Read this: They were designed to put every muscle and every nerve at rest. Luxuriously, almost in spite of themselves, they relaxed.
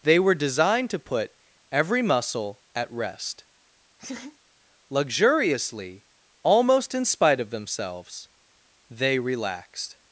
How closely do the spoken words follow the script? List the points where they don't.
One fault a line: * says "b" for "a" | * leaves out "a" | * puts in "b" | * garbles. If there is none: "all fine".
* leaves out "and every nerve"